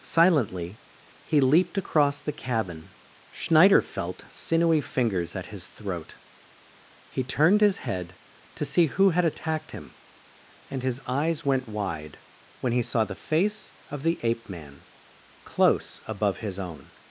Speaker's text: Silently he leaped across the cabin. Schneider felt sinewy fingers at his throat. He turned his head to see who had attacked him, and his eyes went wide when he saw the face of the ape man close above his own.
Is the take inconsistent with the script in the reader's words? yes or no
no